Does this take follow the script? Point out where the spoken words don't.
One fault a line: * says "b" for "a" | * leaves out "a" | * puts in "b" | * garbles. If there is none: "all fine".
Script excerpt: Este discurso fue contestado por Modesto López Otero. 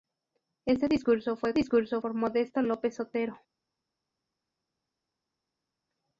* says "discurso" for "contestado"